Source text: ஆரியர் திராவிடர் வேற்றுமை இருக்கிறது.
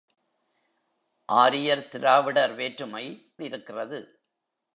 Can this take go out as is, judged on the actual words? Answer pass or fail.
pass